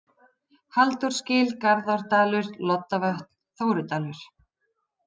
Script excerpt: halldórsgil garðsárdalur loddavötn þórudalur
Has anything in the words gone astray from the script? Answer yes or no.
no